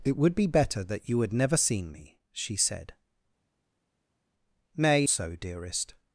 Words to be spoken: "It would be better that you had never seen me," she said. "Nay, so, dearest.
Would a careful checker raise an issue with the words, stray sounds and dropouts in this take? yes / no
no